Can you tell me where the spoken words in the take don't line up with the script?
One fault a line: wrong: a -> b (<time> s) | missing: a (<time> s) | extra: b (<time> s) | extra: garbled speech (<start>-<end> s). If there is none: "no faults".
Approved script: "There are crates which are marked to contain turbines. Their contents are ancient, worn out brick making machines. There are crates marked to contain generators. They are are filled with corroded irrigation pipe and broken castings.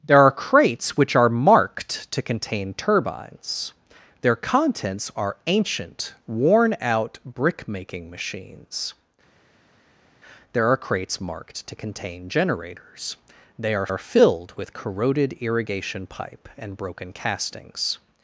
no faults